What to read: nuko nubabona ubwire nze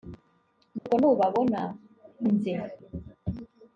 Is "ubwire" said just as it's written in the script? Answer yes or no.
no